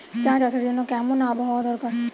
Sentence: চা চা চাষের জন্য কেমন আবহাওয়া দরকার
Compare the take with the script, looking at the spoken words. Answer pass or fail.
fail